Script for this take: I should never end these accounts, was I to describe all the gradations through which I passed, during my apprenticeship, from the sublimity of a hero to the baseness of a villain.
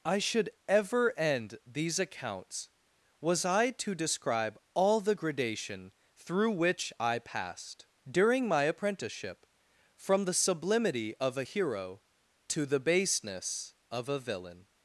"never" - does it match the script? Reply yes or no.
no